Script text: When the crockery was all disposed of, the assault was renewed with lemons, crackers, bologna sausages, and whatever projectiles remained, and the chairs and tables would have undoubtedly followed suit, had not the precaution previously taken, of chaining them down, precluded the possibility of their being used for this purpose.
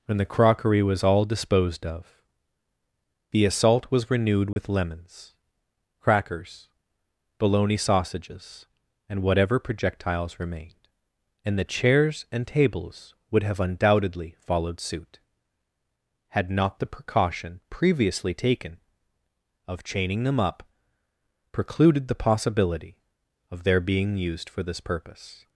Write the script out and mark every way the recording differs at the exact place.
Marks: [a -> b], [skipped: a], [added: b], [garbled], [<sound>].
When the crockery was all disposed of, the assault was renewed with [dropout] lemons, crackers, bologna sausages, and whatever projectiles remained, and the chairs and tables would have undoubtedly followed suit, had not the precaution previously taken, of chaining them [down, -> up] precluded the possibility of their being used for this purpose.